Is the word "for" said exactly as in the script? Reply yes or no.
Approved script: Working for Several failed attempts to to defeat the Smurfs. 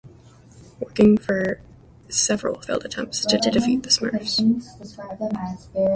yes